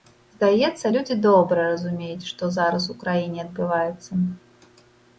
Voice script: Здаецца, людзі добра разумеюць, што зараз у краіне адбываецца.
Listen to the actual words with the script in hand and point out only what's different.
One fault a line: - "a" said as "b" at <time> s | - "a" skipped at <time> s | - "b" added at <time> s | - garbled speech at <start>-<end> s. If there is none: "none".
none